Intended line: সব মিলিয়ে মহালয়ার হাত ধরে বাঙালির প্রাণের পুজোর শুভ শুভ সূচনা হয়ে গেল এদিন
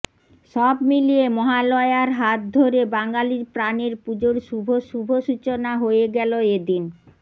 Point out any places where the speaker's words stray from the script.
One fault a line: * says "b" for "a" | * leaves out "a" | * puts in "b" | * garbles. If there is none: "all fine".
all fine